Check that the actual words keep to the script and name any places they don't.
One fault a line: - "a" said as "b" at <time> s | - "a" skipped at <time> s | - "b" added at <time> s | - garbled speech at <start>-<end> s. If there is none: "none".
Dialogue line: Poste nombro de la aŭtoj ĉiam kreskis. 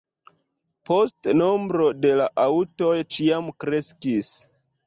none